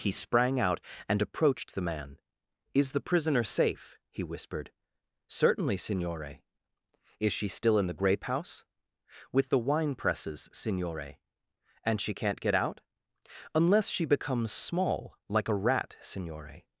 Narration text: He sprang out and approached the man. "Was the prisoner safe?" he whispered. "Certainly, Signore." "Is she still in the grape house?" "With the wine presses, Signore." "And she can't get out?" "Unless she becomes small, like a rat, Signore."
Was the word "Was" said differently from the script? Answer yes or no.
yes